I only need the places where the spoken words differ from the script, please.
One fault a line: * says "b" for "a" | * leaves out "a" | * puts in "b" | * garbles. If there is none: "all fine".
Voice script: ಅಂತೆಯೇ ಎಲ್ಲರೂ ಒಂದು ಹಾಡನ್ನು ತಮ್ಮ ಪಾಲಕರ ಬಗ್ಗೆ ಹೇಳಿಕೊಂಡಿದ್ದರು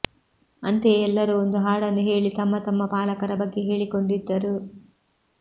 * puts in "ಹೇಳಿ ತಮ್ಮ"